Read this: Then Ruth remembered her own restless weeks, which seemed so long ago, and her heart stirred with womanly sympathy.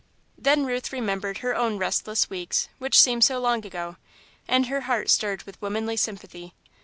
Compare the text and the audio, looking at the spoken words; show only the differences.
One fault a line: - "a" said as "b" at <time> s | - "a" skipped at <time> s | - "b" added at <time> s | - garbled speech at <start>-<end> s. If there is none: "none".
none